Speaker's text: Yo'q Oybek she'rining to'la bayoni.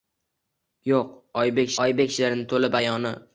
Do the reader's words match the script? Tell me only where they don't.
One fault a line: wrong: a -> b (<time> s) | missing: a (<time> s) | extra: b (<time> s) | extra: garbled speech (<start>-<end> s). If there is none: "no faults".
extra: Oybek (1.9 s)